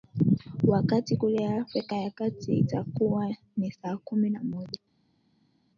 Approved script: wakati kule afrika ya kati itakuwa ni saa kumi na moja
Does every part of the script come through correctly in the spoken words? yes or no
yes